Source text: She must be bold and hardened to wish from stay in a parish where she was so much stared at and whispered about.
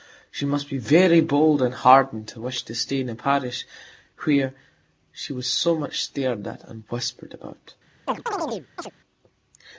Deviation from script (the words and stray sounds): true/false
true